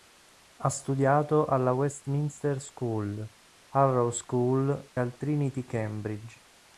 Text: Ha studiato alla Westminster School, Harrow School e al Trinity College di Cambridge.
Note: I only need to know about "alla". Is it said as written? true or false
true